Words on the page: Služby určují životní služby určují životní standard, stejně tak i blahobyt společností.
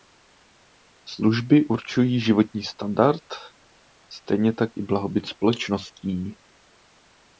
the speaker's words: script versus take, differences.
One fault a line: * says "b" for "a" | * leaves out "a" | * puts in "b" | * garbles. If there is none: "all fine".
* leaves out "služby určují životní"